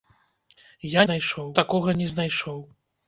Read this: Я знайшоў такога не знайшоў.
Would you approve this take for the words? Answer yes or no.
yes